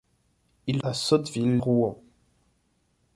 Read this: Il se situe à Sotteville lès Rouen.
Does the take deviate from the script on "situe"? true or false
true